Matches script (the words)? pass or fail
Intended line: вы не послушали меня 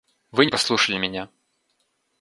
pass